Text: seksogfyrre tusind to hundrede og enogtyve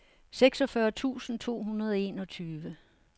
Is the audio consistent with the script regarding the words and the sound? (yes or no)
yes